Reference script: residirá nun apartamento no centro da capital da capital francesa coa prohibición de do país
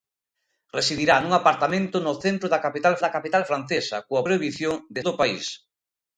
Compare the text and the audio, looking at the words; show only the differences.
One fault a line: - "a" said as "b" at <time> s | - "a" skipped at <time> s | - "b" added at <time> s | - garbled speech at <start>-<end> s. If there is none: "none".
none